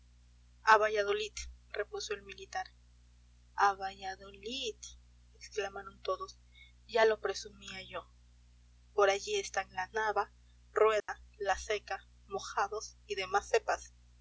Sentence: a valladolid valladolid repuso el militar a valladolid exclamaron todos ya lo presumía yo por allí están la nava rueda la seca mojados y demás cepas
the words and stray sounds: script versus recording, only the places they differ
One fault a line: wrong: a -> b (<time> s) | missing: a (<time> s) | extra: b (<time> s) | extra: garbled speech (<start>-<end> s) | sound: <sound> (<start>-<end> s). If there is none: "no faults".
missing: valladolid (1.3 s)
sound: dropout (11.0-11.1 s)